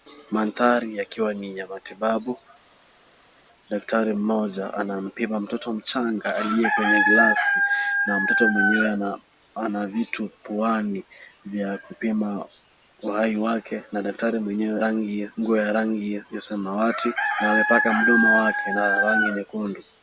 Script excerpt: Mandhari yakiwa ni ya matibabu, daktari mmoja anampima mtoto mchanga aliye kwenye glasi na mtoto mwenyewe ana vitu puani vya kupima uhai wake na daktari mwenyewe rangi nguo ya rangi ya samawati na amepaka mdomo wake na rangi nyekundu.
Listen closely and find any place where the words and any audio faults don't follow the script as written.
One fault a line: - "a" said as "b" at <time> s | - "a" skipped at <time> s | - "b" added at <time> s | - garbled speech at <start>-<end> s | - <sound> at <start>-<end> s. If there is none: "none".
none